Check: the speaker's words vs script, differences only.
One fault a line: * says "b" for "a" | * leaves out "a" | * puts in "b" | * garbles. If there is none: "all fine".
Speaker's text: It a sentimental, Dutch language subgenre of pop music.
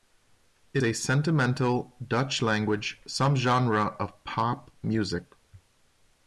all fine